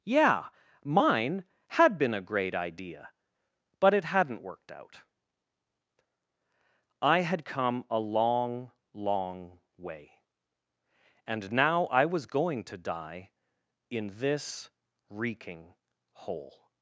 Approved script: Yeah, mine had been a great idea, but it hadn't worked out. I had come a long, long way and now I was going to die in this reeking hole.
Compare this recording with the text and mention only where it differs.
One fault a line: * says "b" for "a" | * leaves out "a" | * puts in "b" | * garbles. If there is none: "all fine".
all fine